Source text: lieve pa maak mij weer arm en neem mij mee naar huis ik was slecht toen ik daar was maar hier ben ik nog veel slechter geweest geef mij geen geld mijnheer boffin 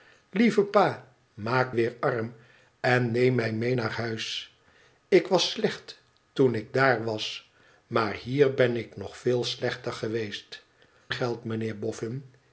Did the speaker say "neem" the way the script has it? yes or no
yes